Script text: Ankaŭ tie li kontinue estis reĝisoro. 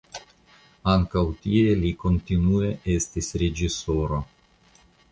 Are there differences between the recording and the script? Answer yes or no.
no